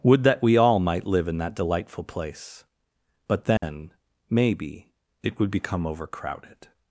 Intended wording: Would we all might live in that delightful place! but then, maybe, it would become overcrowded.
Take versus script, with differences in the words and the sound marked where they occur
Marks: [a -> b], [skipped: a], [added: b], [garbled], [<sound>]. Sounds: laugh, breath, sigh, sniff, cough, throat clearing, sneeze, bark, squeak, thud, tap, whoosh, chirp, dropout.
Would [added: that] we all might live in that delightful place! but then, [dropout] maybe, it would become overcrowded.